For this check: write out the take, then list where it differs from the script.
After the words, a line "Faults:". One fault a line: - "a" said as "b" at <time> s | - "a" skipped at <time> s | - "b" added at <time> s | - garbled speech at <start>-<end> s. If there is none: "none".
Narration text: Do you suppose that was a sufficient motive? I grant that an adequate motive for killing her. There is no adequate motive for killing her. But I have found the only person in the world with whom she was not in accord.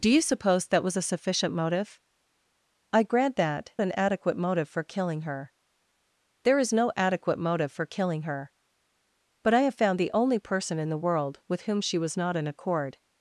Do you suppose that was a sufficient motive? I grant that an adequate motive for killing her. There is no adequate motive for killing her. But I have found the only person in the world with whom she was not in accord.
Faults:
none